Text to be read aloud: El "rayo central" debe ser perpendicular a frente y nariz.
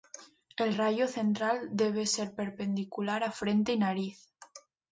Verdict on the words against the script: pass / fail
pass